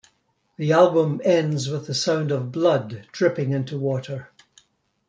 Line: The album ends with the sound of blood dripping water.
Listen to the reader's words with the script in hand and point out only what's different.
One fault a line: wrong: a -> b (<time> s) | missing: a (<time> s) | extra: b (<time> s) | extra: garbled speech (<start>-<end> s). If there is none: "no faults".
extra: into (3.5 s)